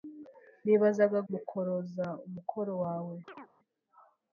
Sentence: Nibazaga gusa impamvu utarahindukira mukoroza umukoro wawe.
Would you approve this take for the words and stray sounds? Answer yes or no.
no